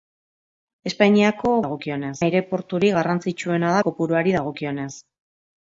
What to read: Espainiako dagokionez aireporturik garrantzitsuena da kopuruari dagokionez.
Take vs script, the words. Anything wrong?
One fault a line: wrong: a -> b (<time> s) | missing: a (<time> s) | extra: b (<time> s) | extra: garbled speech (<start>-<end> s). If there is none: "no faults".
no faults